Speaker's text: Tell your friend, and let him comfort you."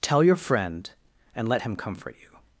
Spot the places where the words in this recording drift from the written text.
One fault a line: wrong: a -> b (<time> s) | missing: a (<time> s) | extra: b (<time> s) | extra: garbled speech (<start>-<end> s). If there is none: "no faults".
no faults